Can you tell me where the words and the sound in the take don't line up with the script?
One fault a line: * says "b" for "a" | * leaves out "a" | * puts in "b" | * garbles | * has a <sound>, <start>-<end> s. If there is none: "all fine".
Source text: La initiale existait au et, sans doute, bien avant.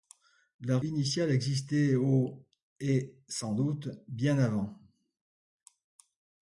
all fine